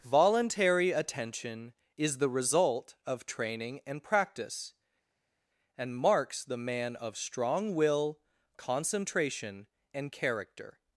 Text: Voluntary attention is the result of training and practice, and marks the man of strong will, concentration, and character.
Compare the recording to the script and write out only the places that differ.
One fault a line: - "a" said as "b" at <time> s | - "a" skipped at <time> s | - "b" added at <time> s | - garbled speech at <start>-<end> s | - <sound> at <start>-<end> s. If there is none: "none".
none